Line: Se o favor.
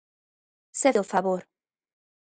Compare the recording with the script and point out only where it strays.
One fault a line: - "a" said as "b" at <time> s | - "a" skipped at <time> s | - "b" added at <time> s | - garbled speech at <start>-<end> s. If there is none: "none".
none